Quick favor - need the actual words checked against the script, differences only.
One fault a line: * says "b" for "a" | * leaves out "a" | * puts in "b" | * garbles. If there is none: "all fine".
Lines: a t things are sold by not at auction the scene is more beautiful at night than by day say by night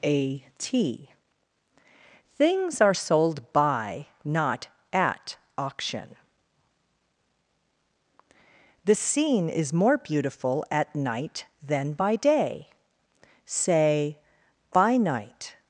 all fine